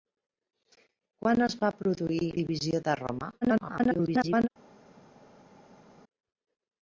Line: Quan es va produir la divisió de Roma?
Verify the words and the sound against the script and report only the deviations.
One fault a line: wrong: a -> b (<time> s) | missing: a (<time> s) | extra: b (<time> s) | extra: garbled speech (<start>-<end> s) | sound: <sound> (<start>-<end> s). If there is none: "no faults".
missing: la (2.3 s)
extra: garbled speech (3.4-4.5 s)